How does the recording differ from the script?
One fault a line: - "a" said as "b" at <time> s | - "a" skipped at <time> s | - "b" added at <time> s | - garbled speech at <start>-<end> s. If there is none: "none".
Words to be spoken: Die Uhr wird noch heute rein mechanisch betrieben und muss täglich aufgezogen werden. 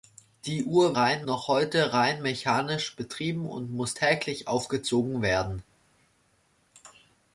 - "wird" said as "rein" at 1.0 s